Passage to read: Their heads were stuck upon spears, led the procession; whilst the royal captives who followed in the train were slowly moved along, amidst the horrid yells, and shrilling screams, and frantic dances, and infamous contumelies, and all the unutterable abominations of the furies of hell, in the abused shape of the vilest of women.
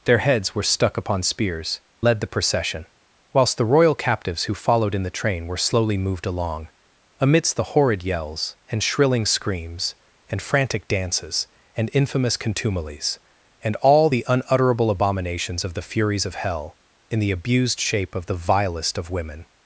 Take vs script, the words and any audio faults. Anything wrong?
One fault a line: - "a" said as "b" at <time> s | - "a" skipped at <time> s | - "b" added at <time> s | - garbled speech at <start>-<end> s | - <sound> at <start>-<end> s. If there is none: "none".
none